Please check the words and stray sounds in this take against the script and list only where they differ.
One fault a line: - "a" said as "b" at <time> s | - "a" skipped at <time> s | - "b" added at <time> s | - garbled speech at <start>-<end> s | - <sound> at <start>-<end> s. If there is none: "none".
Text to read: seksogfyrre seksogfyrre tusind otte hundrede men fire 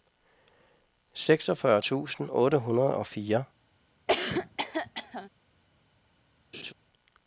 - "seksogfyrre" skipped at 1.8 s
- "men" said as "og" at 3.0 s
- cough at 4.1-5.3 s
- laugh at 6.5-6.7 s